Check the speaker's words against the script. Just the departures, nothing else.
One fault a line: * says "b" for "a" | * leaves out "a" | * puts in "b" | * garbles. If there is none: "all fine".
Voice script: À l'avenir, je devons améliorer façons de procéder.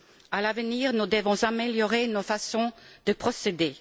* says "nous" for "je"
* puts in "nos"